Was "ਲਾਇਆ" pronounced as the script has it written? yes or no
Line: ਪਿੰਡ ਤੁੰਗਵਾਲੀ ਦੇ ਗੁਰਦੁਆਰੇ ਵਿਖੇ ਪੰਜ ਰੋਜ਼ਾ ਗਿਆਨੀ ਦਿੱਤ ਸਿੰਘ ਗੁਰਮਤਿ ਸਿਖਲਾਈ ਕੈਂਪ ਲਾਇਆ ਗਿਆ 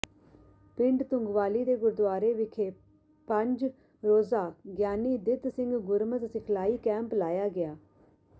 yes